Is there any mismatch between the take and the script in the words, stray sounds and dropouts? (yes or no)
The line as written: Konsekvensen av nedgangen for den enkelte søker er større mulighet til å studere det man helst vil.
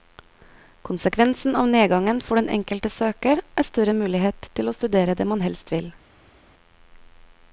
no